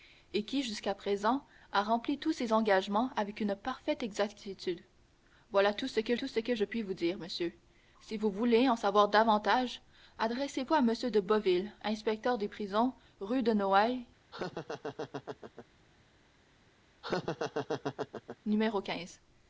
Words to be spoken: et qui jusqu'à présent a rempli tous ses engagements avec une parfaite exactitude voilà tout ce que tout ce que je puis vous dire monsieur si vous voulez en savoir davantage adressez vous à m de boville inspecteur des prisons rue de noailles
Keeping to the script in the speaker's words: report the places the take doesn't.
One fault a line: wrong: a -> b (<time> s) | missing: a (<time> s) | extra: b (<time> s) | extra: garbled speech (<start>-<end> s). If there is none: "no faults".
no faults